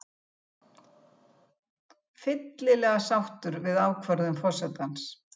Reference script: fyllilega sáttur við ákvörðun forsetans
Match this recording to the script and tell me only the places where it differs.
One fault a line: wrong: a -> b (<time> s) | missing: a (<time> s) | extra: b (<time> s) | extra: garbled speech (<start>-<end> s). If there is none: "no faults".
no faults